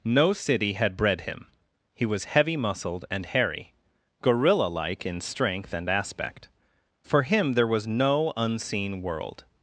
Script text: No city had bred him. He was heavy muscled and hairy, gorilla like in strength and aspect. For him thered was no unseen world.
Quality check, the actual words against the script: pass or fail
fail